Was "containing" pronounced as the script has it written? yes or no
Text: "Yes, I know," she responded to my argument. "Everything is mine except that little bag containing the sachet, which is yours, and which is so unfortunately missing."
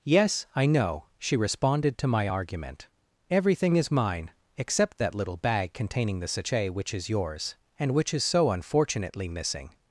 yes